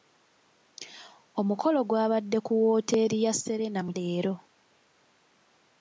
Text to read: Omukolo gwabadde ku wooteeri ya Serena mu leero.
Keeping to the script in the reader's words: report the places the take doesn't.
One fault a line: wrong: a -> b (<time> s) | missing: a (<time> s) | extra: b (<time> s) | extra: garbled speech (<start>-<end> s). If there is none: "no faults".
no faults